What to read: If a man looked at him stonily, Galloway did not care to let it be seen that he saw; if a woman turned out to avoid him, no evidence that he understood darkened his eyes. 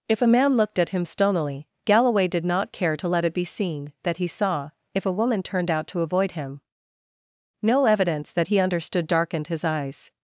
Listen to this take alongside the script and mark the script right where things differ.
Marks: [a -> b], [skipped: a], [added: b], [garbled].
If a man looked at him stonily, Galloway did not care to let it be seen that he saw; if a woman turned out to avoid him, no evidence that he understood darkened his eyes.